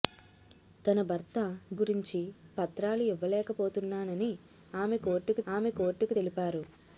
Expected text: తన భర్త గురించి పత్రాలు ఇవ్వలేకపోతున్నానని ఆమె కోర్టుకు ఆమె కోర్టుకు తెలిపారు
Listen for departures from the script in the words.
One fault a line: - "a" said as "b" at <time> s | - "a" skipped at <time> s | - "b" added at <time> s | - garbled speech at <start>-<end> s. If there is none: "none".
none